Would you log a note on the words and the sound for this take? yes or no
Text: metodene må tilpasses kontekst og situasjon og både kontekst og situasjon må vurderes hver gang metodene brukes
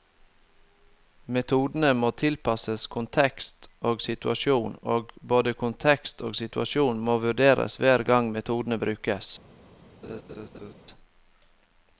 yes